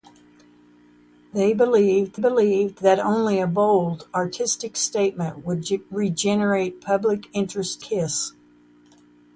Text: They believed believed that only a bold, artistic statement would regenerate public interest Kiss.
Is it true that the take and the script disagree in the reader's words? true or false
false